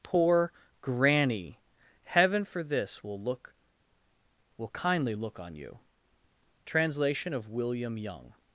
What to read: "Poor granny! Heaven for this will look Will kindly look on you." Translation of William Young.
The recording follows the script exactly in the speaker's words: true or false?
true